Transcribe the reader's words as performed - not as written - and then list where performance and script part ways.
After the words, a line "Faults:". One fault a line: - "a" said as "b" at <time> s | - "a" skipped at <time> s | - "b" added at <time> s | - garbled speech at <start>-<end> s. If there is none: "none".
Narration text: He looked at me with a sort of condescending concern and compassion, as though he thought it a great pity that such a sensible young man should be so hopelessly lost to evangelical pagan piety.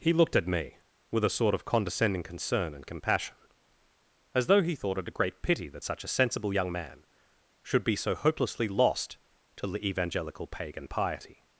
He looked at me with a sort of condescending concern and compassion, as though he thought it a great pity that such a sensible young man should be so hopelessly lost to the evangelical pagan piety.
Faults:
- "the" added at 9.7 s